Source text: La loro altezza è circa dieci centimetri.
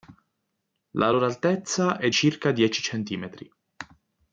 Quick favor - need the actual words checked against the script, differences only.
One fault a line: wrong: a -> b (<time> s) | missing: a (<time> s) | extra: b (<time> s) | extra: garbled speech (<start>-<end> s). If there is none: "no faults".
no faults